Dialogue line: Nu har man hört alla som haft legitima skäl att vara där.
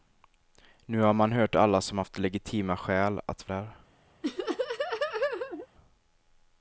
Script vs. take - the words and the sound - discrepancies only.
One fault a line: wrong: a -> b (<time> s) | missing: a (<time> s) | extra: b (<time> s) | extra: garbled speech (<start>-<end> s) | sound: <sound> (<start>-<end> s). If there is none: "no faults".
missing: vara (3.5 s)
sound: laugh (4.2-5.7 s)